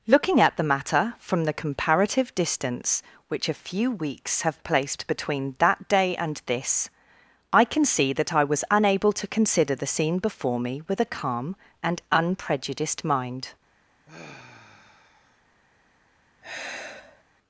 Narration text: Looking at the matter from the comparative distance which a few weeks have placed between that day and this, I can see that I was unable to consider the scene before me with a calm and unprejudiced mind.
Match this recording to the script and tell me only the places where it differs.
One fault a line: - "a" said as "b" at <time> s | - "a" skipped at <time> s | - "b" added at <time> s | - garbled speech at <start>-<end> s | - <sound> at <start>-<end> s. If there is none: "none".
- sigh at 14.1-15.4 s
- sigh at 16.4-17.2 s